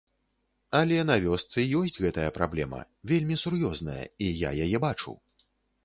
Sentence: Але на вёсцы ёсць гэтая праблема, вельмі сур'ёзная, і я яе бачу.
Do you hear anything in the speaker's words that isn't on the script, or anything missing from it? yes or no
no